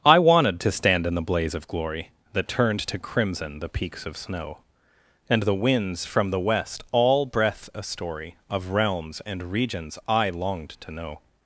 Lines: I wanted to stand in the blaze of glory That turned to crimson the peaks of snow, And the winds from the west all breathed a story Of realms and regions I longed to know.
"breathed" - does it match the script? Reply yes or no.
no